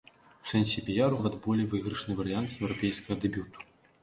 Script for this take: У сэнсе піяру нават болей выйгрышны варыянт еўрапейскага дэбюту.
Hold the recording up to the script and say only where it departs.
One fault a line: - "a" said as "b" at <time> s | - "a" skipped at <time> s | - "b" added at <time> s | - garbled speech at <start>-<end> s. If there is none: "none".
none